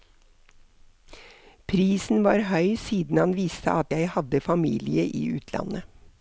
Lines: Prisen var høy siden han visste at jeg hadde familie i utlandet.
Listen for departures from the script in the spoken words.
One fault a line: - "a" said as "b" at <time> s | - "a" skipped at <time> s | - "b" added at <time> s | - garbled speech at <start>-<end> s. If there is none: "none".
none